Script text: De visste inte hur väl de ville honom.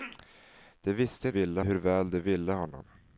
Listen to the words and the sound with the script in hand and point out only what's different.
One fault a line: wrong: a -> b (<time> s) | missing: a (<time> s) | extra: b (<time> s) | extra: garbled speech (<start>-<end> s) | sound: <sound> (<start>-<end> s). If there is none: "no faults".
wrong: inte -> ville (1.3 s)